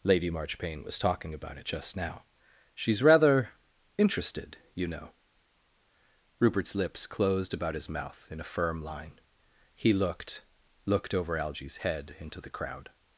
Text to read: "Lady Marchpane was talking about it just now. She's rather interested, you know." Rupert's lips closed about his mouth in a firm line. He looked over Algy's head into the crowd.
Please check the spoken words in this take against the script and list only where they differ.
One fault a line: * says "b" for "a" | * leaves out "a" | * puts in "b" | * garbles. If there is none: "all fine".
* puts in "looked"